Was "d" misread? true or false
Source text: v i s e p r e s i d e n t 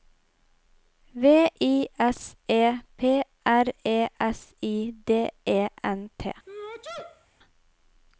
false